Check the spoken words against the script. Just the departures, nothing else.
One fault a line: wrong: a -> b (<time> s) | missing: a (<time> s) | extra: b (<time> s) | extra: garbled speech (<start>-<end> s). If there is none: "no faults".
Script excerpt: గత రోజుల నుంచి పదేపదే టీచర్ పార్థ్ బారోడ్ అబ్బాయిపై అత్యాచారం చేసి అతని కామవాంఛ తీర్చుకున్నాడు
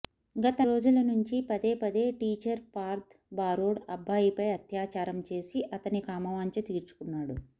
no faults